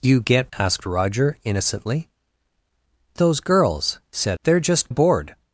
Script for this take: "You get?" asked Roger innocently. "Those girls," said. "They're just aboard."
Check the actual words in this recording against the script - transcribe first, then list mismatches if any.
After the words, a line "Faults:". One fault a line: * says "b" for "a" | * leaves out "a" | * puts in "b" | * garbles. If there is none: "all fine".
"You get?" asked Roger innocently. "Those girls," said. "They're just aboard."
Faults:
all fine